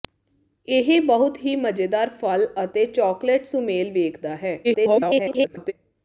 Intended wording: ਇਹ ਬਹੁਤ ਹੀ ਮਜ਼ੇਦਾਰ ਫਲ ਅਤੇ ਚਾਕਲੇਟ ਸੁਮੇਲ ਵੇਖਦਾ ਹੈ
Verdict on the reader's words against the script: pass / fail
fail